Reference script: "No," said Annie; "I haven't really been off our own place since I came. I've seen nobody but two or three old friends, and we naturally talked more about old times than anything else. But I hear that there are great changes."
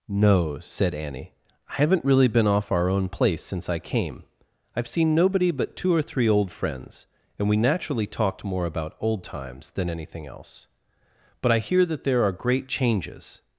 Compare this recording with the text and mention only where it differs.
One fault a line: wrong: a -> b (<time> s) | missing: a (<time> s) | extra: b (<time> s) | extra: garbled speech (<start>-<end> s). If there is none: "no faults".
no faults